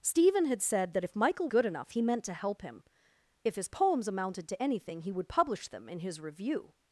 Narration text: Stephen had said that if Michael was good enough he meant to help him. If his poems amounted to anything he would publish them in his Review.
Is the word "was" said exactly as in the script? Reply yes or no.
no